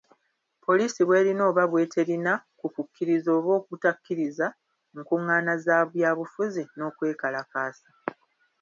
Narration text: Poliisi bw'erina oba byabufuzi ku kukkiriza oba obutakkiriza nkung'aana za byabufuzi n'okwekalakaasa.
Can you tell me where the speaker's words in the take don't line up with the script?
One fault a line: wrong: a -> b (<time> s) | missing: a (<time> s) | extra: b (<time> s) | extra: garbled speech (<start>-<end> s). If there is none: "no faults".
wrong: byabufuzi -> bw'eterina (1.7 s)